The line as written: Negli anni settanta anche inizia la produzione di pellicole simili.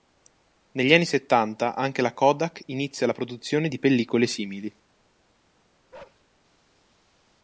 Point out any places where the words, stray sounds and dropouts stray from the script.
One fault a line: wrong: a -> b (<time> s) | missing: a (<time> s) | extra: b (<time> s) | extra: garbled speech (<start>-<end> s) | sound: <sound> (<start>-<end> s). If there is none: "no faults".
extra: la Kodak (2.0 s)
sound: bark (5.9-6.2 s)